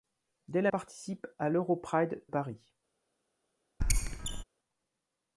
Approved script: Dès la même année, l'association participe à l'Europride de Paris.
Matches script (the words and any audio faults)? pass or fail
fail